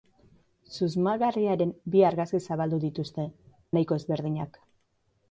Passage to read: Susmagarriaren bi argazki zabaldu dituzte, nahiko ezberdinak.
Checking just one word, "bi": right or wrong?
right